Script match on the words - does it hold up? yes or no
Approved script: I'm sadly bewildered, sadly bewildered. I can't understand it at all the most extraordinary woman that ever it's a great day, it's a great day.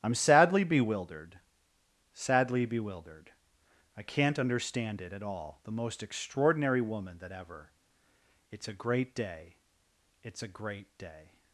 yes